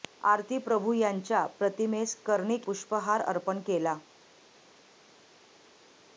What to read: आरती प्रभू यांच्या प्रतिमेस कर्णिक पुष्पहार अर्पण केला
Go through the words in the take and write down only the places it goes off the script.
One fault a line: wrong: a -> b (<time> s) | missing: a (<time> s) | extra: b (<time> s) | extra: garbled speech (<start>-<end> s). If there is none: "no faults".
no faults